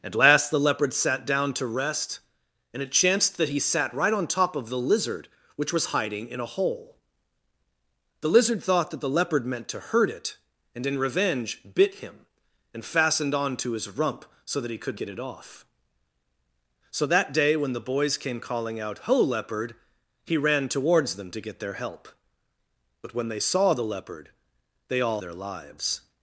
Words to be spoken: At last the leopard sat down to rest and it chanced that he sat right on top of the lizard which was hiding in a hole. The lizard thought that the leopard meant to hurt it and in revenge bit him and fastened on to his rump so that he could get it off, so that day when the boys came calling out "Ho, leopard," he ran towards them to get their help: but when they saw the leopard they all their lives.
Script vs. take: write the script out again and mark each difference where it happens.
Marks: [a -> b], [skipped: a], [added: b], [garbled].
At last the leopard sat down to rest and it chanced that he sat right on top of the lizard which was hiding in a hole. The lizard thought that the leopard meant to hurt it and in revenge bit him and fastened on to his rump so that he could get it off, so that day when the boys came calling out "Ho, leopard," he ran towards them to get their help: but when they saw the leopard they all their lives.